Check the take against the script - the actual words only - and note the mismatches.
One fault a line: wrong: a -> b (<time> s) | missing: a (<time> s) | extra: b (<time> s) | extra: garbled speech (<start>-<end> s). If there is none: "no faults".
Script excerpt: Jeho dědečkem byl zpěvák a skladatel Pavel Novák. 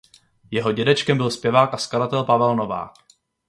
no faults